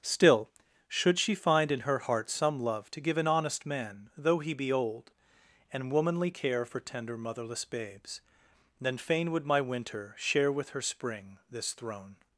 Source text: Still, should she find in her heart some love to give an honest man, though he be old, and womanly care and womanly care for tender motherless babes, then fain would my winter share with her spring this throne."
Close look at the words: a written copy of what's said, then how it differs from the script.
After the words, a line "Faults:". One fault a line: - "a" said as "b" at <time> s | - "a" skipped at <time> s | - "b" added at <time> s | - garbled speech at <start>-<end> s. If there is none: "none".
Still, should she find in her heart some love to give an honest man, though he be old, and womanly care for tender motherless babes, then fain would my winter share with her spring this throne."
Faults:
- "and womanly care" skipped at 6.6 s